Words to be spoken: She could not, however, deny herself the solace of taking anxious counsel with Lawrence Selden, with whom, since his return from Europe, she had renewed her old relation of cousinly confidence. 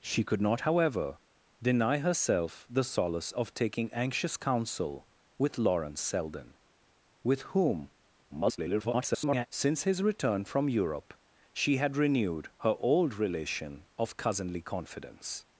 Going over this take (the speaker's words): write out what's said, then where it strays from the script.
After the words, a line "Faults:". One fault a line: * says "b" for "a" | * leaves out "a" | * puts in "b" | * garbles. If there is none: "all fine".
She could not, however, deny herself the solace of taking anxious counsel with Lawrence Selden, with whom, [garbled] since his return from Europe, she had renewed her old relation of cousinly confidence.
Faults:
* garbles